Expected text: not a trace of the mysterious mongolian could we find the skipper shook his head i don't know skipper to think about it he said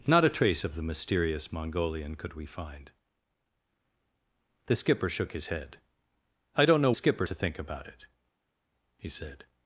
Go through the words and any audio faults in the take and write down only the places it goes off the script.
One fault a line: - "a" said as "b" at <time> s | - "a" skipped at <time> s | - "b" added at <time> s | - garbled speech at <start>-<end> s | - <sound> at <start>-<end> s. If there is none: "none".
none